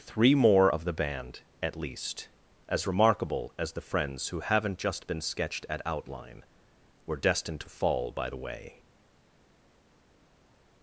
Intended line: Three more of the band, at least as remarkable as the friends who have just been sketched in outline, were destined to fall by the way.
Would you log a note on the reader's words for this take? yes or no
yes